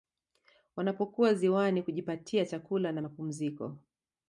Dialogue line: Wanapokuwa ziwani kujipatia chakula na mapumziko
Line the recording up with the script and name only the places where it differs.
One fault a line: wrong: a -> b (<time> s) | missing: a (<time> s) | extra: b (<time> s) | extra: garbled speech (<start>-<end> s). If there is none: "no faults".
no faults